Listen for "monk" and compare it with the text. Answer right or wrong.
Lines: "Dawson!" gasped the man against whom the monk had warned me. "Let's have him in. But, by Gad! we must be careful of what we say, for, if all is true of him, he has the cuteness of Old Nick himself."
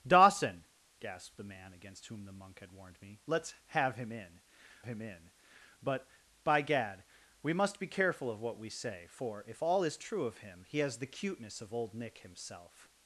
right